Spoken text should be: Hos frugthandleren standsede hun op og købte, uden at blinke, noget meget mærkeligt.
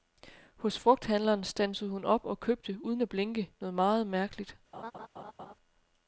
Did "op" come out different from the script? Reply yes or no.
no